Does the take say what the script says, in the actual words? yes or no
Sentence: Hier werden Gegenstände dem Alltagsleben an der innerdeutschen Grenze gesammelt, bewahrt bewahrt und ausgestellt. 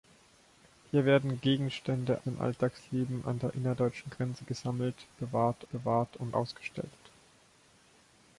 yes